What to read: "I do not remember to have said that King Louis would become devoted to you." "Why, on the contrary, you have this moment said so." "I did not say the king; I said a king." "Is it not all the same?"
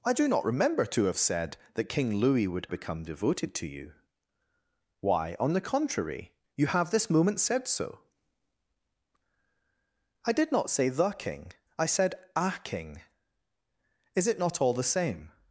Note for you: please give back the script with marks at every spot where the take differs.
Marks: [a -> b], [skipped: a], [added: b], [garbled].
"I do not remember to have said that King Louis would become devoted to you." "Why, on the contrary, you have this moment said so." "I did not say the king; I said a king." "Is it not all the same?"